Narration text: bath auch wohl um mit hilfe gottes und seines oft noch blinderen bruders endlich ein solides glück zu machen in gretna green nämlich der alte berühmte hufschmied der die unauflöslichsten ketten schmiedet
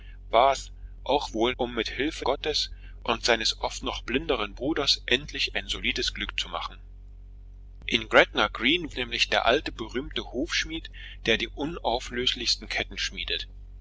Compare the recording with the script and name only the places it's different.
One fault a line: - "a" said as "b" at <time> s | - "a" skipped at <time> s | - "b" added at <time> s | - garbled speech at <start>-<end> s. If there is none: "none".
none